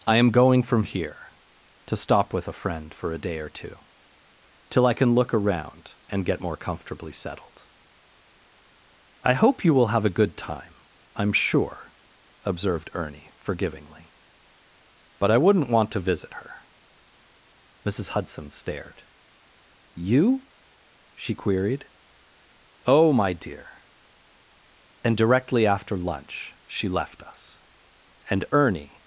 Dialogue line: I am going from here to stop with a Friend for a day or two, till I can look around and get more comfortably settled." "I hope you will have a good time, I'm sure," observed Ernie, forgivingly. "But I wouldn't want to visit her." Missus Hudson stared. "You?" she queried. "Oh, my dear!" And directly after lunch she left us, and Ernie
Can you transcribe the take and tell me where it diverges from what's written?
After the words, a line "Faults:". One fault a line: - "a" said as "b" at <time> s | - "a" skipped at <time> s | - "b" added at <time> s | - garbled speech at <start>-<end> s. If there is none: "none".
I am going from here to stop with a Friend for a day or two, till I can look around and get more comfortably settled." "I hope you will have a good time, I'm sure," observed Ernie, forgivingly. "But I wouldn't want to visit her." Missus Hudson stared. "You?" she queried. "Oh, my dear!" And directly after lunch she left us, and Ernie
Faults:
none